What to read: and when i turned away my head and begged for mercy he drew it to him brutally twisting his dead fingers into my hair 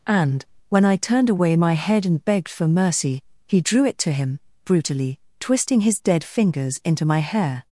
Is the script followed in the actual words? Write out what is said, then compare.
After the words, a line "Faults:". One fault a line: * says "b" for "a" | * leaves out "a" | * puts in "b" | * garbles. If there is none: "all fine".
and when i turned away my head and begged for mercy he drew it to him brutally twisting his dead fingers into my hair
Faults:
all fine